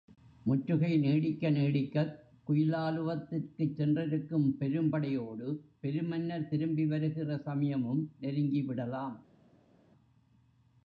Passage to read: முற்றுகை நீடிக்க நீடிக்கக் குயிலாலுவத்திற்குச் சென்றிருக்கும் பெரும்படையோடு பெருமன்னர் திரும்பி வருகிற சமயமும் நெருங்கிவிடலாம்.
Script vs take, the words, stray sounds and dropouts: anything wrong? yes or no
no